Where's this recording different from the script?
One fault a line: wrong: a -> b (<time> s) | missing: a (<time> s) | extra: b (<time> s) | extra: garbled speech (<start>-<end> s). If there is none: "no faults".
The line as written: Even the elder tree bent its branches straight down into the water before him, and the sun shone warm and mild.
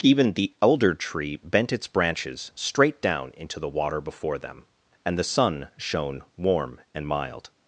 wrong: him -> them (4.4 s)